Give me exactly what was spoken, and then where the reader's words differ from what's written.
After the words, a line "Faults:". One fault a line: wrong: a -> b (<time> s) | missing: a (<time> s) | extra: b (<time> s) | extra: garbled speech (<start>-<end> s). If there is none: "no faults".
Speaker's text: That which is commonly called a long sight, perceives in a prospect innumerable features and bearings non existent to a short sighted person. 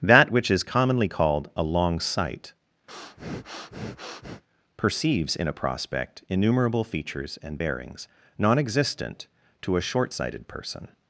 That which is commonly called a long sight, perceives in a prospect innumerable features and bearings non existent to a short sighted person.
Faults:
no faults